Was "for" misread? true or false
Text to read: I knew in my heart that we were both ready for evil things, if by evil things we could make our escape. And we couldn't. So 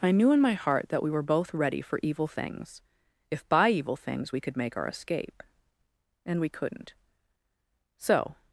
false